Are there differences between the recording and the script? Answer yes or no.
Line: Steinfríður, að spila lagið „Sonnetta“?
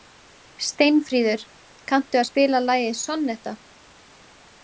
yes